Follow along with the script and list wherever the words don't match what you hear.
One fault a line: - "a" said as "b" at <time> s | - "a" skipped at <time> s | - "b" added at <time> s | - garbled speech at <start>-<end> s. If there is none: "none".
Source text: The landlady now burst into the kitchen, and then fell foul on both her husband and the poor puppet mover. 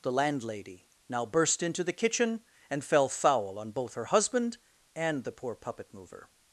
- "then" skipped at 2.8 s